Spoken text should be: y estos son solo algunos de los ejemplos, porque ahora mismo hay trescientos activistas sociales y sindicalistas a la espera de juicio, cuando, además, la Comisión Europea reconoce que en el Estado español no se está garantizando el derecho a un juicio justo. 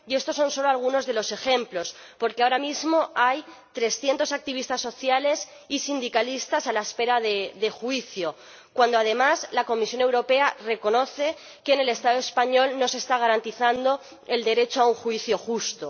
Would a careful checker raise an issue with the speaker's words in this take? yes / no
no